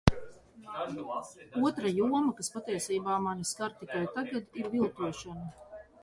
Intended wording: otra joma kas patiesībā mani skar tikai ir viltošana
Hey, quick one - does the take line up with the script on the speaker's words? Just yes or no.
no